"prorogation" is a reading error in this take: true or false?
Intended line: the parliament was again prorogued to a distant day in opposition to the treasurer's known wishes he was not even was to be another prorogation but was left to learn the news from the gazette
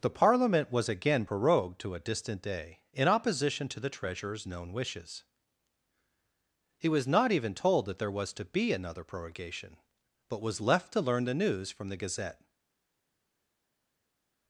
false